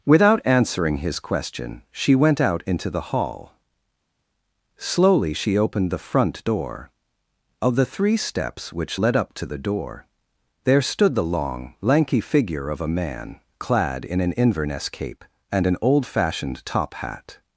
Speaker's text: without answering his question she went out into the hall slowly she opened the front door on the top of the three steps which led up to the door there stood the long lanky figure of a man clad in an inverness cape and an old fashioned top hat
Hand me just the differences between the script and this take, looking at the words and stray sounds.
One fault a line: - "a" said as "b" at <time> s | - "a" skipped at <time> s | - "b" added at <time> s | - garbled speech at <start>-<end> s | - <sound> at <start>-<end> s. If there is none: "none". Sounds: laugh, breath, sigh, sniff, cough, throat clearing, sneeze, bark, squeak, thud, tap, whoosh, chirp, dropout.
- "on the top" skipped at 6.9 s